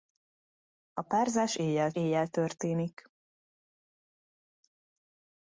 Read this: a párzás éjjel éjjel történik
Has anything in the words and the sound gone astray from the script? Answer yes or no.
no